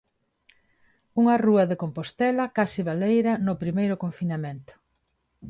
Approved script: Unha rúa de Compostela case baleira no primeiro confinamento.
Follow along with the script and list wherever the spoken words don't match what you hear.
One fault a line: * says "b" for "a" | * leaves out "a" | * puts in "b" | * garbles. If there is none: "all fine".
all fine